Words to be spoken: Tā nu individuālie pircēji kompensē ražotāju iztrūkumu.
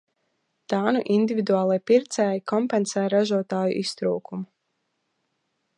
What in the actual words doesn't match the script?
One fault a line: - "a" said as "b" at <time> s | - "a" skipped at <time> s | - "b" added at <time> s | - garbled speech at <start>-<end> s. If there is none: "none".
none